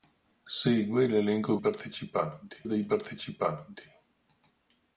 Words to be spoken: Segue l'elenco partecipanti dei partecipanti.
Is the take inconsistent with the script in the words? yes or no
no